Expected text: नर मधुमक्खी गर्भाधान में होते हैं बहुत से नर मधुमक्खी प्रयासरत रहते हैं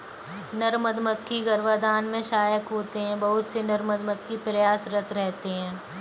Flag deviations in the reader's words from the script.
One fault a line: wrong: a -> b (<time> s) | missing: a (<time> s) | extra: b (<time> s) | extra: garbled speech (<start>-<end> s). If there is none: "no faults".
extra: सहायक (2.2 s)